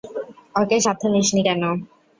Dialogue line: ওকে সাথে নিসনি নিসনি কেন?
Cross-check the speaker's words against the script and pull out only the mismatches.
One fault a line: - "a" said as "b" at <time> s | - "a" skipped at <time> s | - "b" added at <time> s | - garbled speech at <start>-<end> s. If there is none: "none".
- "নিসনি" skipped at 1.4 s